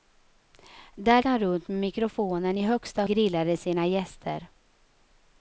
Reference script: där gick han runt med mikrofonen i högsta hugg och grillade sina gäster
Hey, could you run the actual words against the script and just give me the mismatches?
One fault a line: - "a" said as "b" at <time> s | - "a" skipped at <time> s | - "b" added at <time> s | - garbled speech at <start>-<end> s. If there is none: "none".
- "gick" skipped at 1.2 s
- "hugg och" skipped at 3.0 s